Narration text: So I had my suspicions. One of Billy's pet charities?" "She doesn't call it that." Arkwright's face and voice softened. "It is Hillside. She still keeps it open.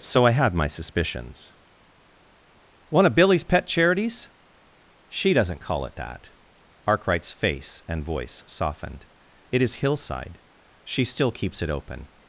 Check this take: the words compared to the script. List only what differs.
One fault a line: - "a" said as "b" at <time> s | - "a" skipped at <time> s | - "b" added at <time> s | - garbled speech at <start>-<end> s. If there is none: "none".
none